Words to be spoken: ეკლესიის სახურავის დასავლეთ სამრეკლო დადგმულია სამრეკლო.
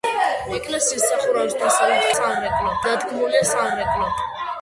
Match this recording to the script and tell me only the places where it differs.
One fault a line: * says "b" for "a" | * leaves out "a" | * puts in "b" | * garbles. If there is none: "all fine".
all fine